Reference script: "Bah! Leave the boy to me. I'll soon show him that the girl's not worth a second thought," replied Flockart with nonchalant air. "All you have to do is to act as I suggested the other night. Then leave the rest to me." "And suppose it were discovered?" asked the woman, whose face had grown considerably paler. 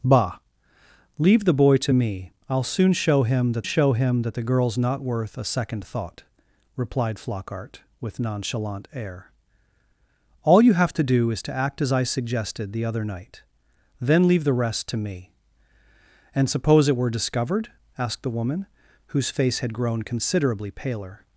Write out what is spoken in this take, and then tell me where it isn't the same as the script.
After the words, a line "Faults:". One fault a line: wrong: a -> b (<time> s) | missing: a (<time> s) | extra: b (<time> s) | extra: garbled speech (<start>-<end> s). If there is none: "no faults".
"Bah! Leave the boy to me. I'll soon show him that show him that the girl's not worth a second thought," replied Flockart with nonchalant air. "All you have to do is to act as I suggested the other night. Then leave the rest to me." "And suppose it were discovered?" asked the woman, whose face had grown considerably paler.
Faults:
extra: show him that (3.6 s)